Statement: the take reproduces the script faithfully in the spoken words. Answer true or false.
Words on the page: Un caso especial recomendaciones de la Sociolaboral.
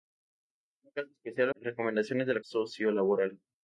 true